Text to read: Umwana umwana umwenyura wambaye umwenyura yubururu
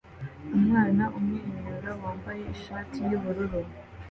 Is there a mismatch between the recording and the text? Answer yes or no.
yes